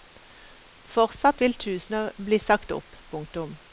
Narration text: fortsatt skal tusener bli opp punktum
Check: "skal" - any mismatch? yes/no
yes